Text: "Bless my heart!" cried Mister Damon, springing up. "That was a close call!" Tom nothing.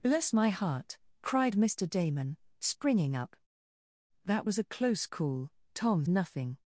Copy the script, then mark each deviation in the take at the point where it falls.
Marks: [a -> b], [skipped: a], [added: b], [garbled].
"Bless my heart!" cried Mister Damon, springing up. "That was a close call!" Tom nothing.